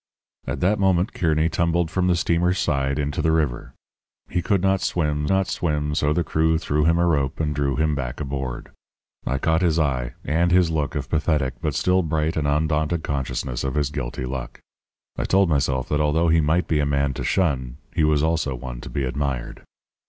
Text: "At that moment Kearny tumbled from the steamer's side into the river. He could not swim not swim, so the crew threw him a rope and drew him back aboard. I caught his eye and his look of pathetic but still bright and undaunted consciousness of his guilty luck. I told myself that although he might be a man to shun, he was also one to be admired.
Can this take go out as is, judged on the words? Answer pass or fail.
pass